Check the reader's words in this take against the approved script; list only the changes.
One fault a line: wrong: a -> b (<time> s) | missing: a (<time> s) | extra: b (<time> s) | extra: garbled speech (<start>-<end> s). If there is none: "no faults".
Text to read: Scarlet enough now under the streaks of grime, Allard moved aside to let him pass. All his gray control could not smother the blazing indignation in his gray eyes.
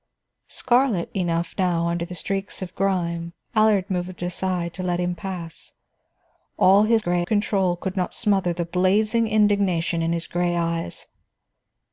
no faults